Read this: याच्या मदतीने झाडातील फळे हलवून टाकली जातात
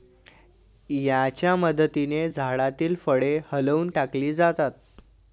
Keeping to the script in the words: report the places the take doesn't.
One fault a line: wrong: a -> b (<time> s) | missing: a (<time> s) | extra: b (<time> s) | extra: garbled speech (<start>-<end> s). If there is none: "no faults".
no faults